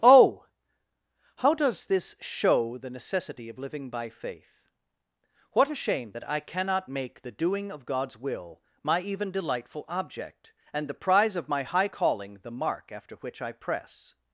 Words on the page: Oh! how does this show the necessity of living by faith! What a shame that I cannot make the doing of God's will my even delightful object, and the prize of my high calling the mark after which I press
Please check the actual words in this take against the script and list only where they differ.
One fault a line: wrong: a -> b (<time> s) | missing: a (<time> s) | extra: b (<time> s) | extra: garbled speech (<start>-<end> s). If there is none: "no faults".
no faults